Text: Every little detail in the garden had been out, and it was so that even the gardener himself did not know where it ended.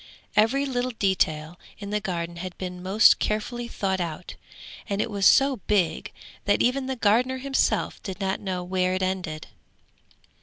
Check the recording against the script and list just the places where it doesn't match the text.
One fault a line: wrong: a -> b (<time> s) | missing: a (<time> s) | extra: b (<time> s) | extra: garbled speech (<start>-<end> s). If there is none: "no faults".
extra: most carefully thought (2.8 s)
extra: big (5.7 s)